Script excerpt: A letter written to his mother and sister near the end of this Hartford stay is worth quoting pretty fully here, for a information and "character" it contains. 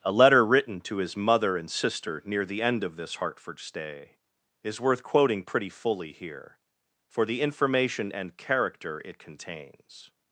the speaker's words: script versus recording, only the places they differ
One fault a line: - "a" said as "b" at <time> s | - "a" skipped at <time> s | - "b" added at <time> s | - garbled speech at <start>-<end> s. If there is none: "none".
- "a" said as "the" at 7.3 s